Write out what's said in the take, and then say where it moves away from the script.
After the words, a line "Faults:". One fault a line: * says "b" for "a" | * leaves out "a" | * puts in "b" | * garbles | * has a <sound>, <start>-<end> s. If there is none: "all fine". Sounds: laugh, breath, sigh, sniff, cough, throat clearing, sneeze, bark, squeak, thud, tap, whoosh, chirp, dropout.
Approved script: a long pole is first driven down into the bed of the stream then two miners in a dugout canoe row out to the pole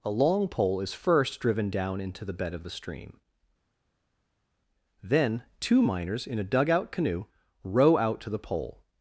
a long pole is first driven down into the bed of the stream then two miners in a dugout canoe row out to the pole
Faults:
all fine